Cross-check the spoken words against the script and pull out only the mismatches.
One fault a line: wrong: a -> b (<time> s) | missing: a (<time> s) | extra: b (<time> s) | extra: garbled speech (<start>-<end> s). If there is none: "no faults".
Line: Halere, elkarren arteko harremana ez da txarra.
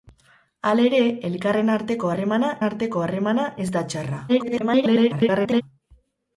extra: arteko harremana (2.7 s)
extra: garbled speech (4.3-5.6 s)